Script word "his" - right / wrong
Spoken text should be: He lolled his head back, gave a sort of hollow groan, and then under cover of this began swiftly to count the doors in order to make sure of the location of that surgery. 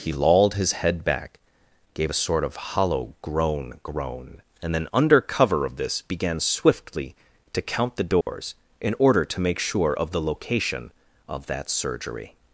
right